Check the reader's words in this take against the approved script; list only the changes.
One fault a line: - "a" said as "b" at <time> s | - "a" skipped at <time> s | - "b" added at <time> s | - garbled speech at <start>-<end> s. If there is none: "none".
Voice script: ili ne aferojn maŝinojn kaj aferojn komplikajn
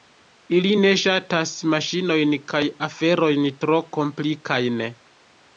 - "aferojn" said as "ŝatas" at 1.0 s
- "tro" added at 3.6 s